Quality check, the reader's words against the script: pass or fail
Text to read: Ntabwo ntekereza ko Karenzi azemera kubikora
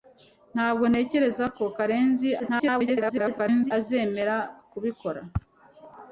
fail